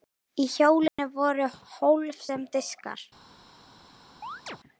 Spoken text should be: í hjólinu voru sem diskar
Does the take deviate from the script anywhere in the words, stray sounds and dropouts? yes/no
yes